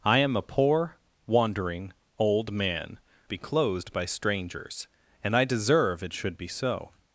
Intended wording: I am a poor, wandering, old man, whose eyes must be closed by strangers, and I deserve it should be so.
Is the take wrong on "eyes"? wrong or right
wrong